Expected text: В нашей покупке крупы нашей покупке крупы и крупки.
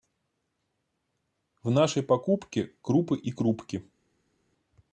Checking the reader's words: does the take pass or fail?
fail